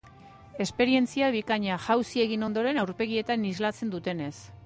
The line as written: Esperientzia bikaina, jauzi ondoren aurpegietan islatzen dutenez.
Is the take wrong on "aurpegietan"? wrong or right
right